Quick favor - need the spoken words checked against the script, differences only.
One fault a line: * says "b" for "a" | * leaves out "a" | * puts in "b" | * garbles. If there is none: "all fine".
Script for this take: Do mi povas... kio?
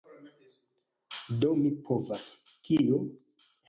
all fine